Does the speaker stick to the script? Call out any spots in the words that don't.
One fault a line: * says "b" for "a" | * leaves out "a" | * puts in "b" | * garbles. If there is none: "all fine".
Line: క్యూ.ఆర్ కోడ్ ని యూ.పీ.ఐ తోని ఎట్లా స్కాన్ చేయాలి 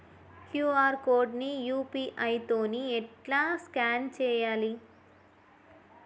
all fine